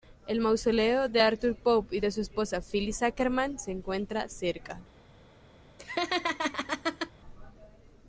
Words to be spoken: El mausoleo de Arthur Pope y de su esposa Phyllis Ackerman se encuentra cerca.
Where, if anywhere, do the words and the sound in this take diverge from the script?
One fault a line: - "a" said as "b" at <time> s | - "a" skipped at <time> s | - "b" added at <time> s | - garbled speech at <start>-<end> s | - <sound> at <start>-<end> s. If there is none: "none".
- laugh at 5.8-7.1 s